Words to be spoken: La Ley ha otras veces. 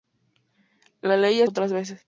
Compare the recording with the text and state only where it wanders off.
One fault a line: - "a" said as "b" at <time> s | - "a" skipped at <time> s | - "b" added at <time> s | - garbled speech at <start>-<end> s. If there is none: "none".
none